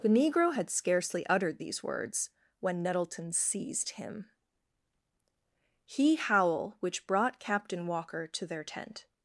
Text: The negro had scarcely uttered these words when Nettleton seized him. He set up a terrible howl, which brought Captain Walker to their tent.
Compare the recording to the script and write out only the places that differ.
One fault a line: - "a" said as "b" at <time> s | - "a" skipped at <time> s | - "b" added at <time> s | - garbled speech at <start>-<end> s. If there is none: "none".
- "set up a terrible" skipped at 6.2 s